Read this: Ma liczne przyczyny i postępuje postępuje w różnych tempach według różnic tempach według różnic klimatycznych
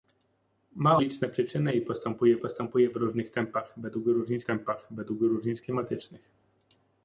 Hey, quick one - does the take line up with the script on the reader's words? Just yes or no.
yes